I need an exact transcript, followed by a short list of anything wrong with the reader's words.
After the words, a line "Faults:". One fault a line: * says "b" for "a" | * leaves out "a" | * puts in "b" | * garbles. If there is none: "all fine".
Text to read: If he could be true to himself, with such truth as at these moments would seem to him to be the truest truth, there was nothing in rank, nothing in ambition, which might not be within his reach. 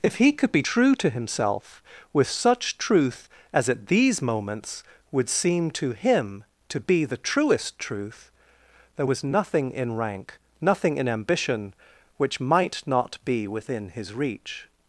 If he could be true to himself, with such truth as at these moments would seem to him to be the truest truth, there was nothing in rank, nothing in ambition, which might not be within his reach.
Faults:
all fine